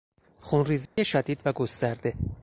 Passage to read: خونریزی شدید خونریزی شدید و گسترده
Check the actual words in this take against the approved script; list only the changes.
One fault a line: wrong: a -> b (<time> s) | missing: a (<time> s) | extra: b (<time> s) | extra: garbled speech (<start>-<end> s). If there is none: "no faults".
missing: خونریزی شدید (1.4 s)